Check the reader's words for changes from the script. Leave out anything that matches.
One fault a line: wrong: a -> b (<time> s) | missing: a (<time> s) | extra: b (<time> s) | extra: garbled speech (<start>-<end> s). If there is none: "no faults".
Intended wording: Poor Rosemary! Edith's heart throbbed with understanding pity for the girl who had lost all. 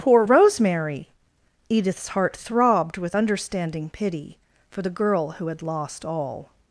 no faults